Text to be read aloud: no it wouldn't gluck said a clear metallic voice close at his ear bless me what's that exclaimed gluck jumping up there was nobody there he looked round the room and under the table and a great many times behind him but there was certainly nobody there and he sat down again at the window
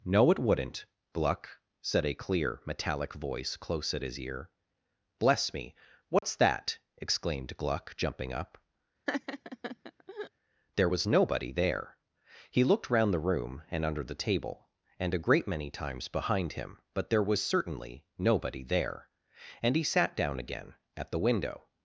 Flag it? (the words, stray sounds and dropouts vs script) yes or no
yes